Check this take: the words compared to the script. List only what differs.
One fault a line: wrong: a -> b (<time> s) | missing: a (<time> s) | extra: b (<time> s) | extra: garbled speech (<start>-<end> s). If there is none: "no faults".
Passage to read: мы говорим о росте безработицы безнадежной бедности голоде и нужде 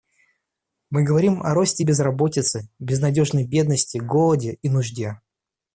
no faults